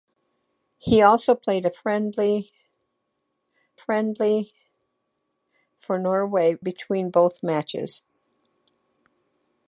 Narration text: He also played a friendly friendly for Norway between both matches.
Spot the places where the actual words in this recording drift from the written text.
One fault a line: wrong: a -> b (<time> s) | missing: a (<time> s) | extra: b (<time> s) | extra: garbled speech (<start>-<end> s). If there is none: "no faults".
no faults